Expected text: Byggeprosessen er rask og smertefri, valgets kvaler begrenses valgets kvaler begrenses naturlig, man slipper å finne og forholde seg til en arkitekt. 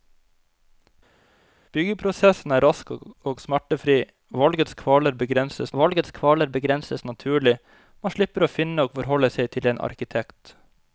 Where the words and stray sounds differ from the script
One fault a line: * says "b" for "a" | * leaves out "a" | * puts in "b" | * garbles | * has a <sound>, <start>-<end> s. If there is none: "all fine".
all fine